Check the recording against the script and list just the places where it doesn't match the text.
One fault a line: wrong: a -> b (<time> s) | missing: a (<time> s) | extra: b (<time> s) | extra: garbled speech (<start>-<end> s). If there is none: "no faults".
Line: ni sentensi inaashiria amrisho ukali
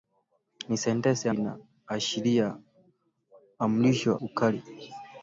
no faults